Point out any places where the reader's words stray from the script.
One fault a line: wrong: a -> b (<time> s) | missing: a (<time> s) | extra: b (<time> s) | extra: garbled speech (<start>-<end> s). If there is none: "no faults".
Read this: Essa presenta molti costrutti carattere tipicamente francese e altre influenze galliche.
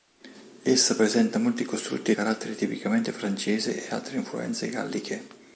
no faults